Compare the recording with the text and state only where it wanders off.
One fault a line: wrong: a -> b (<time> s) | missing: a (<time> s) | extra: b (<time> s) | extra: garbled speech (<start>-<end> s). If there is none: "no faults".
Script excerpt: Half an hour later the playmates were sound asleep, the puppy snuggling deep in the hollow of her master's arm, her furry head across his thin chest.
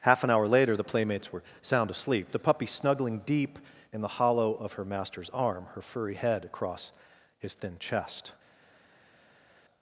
no faults